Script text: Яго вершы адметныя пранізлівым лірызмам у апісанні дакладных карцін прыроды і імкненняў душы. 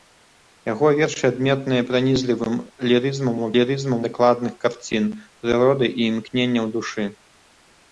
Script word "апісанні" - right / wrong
wrong